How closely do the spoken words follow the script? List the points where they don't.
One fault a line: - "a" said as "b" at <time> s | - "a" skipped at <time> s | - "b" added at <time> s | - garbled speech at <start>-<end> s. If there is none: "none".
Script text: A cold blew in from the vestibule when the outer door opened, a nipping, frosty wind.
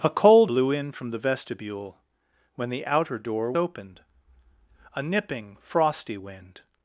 none